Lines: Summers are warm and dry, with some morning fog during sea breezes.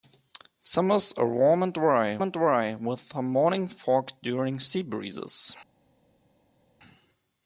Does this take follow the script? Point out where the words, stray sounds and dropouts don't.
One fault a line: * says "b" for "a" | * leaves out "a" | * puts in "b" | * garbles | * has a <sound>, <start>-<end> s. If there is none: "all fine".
* puts in "and dry"